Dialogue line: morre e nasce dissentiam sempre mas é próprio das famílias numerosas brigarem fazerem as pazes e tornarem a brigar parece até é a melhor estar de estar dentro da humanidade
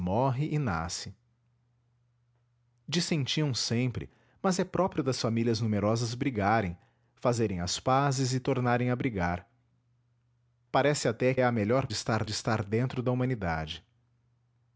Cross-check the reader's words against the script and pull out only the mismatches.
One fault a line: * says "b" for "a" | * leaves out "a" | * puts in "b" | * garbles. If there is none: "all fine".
all fine